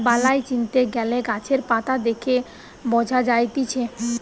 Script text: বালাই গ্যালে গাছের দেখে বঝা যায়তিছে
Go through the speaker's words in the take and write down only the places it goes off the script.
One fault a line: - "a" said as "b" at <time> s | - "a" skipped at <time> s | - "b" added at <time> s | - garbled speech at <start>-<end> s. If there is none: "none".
- "চিনতে" added at 0.5 s
- "পাতা" added at 1.7 s